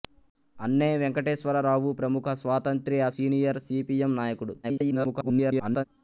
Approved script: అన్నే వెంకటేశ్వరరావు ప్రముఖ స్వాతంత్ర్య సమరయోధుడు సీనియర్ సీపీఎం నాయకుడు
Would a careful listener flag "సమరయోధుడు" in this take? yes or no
yes